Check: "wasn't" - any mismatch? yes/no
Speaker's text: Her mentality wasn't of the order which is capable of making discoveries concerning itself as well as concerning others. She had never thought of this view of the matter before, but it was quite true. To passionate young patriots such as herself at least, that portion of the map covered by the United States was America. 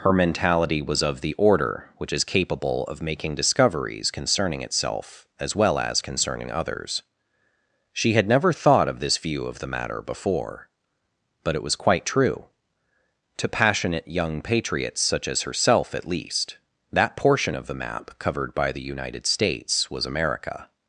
yes